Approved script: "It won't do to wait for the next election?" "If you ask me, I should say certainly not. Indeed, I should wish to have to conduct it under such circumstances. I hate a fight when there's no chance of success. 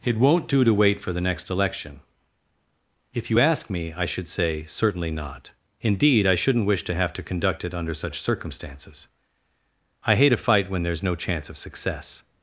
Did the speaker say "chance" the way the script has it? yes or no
yes